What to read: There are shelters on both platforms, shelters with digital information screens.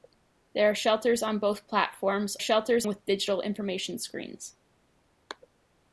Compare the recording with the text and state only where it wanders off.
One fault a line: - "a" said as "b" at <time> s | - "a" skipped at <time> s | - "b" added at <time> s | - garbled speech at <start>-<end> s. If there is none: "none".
none